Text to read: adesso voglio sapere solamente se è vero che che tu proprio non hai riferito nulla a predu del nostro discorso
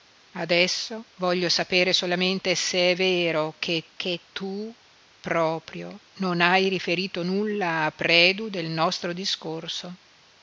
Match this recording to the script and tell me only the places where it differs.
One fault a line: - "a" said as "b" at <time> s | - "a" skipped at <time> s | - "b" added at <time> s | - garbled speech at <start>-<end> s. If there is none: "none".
none